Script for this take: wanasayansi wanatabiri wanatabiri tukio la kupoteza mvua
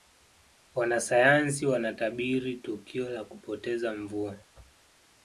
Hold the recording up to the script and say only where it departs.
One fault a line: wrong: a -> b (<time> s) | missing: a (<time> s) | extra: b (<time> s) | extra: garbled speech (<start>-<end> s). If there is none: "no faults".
missing: wanatabiri (2.6 s)